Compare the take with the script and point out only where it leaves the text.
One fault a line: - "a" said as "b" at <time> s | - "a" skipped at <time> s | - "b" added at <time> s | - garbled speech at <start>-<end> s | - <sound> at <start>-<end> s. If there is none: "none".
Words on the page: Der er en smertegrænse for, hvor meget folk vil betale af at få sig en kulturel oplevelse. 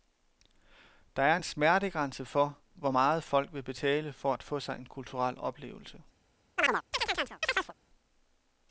- "af" said as "for" at 4.1 s
- chirp at 6.6-7.7 s